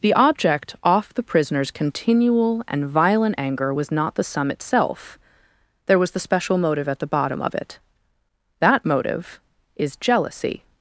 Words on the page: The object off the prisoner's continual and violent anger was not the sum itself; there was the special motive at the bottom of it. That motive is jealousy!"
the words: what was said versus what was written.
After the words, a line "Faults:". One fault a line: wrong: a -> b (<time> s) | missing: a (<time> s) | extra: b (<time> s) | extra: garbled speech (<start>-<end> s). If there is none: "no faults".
The object off the prisoner's continual and violent anger was not the sum itself; there was the special motive at the bottom of it. That motive is jealousy!"
Faults:
no faults